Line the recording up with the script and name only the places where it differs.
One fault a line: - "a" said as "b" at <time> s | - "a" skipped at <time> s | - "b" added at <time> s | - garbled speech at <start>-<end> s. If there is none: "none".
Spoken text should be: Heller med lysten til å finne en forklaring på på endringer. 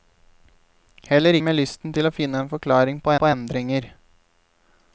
none